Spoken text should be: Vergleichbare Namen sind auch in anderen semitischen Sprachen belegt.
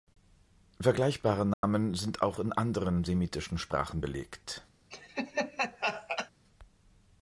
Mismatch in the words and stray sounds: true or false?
true